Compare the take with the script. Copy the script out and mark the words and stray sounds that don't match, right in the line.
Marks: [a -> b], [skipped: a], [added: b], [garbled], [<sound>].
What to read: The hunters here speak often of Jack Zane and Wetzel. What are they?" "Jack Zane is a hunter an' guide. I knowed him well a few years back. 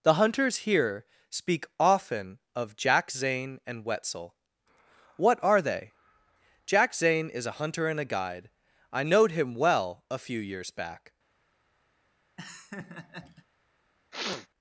The hunters here speak often of Jack Zane and Wetzel. What are they?" "Jack Zane is a hunter [an' -> and a] guide. I knowed him well a few years back. [laugh] [sniff]